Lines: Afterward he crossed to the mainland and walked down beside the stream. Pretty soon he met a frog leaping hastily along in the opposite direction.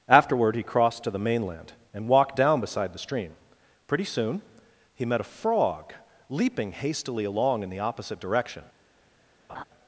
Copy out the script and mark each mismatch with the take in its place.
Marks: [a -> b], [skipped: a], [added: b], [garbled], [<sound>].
Afterward he crossed to the mainland and walked down beside the stream. Pretty soon he met a frog leaping hastily along in the opposite direction. [laugh]